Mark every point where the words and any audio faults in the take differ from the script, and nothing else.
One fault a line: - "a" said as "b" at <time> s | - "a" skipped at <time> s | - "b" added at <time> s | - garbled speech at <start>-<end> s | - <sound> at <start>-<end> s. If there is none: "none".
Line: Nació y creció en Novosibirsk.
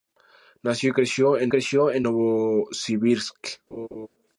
- "creció en" added at 1.5 s
- laugh at 3.7-4.1 s